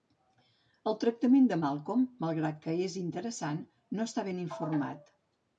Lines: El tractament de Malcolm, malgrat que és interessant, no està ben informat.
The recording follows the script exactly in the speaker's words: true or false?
true